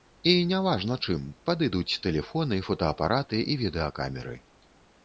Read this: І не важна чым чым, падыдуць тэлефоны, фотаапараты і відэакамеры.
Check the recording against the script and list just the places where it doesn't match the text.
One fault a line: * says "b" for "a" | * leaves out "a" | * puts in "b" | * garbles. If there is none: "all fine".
* leaves out "чым"